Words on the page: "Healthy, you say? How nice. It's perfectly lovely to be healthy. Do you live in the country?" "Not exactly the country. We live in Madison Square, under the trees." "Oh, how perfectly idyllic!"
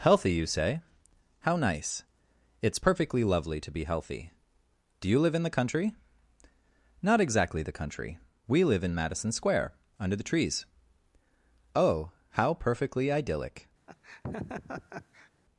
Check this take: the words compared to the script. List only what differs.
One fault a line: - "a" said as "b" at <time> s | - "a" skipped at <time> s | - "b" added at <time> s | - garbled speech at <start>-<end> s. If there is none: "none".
none